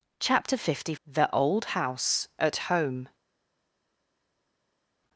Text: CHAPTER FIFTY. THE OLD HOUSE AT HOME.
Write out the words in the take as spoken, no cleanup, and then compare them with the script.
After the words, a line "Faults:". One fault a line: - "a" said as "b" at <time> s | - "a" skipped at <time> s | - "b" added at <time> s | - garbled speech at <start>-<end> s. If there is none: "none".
CHAPTER FIFTY. THE OLD HOUSE AT HOME.
Faults:
none